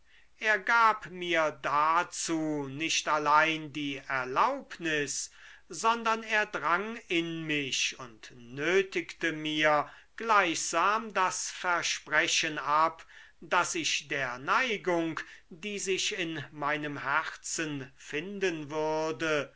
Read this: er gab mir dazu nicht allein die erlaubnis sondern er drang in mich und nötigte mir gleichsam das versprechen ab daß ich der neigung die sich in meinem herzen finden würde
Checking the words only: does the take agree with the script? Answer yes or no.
yes